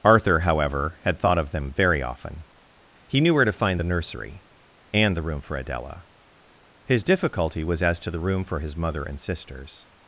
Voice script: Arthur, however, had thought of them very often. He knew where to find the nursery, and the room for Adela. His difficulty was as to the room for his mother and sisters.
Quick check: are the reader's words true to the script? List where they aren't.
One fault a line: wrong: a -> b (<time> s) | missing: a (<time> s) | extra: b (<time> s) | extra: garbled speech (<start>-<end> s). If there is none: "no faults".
no faults